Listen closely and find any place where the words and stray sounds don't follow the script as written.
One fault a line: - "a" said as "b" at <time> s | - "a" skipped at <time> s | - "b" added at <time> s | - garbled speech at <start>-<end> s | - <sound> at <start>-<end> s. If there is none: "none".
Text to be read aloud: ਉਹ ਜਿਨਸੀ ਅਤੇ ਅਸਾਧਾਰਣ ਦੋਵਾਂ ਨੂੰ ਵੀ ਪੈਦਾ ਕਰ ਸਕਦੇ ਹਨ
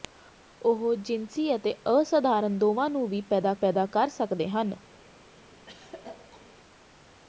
- "ਪੈਦਾ" added at 3.5 s
- throat clearing at 5.7-6.6 s